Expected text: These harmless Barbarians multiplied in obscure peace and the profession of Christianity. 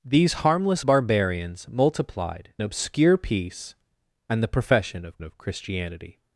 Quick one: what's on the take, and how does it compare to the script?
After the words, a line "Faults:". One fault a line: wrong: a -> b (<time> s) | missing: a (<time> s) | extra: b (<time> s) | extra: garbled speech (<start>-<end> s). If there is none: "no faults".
These harmless Barbarians multiplied obscure peace and the profession of of Christianity.
Faults:
missing: in (2.5 s)
extra: of (5.2 s)